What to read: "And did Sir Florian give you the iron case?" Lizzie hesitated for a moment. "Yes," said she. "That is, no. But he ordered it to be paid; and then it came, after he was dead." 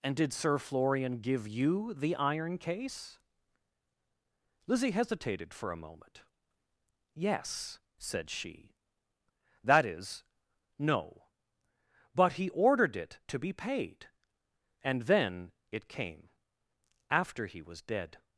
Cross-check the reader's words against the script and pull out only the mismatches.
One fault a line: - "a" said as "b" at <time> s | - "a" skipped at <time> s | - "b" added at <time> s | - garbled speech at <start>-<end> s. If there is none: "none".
none